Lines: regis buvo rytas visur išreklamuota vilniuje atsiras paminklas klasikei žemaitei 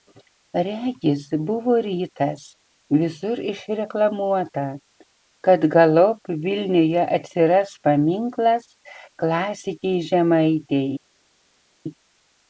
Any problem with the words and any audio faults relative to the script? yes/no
yes